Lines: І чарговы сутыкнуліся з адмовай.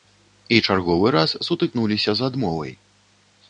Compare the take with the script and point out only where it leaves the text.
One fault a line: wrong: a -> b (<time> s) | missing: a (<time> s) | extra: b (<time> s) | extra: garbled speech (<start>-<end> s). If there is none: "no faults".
extra: раз (1.2 s)